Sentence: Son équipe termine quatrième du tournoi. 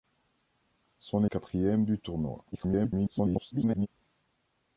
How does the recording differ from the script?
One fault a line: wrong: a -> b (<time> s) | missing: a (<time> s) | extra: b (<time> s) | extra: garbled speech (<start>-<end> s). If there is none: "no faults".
missing: équipe termine (1.2 s)
extra: garbled speech (2.5-3.9 s)